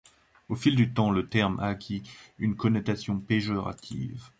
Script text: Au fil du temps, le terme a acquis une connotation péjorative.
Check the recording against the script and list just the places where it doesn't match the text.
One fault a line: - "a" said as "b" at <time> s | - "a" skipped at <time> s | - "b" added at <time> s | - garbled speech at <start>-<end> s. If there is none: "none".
none